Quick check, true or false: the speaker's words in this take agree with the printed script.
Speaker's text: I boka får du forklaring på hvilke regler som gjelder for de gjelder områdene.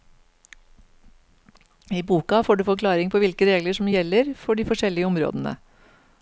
false